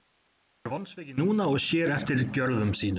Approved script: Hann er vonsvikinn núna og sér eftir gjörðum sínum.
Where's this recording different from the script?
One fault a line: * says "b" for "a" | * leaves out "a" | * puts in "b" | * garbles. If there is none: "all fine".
all fine